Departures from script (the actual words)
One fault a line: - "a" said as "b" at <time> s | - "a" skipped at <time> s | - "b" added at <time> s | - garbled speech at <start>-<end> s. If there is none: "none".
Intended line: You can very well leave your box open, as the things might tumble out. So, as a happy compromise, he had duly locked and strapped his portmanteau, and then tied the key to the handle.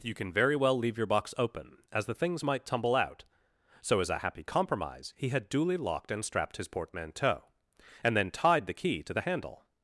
none